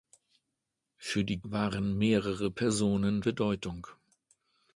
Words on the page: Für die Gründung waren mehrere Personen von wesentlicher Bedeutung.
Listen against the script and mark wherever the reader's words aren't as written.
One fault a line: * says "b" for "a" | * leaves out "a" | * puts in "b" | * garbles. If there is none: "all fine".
* leaves out "Gründung"
* leaves out "von wesentlicher"